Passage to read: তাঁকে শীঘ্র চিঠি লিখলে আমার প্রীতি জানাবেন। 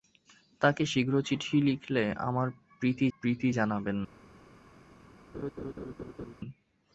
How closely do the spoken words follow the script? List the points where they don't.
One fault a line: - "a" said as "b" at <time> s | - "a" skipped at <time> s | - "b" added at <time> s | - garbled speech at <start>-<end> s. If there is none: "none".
- "প্রীতি" added at 3.2 s